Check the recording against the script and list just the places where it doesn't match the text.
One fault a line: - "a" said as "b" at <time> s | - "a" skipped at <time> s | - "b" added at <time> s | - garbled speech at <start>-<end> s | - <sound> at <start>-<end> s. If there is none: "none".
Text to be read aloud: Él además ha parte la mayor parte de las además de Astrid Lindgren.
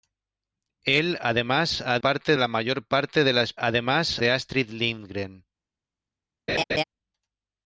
- laugh at 6.5-6.8 s